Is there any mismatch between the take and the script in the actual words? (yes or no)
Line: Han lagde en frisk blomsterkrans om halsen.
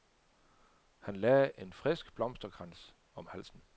no